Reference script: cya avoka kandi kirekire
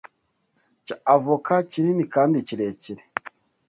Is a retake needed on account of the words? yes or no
yes